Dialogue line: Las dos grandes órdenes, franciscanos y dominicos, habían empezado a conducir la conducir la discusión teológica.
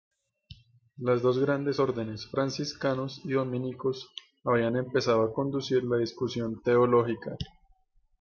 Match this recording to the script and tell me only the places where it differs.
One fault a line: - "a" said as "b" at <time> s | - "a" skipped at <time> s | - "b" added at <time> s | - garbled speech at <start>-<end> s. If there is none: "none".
- "conducir la" skipped at 6.0 s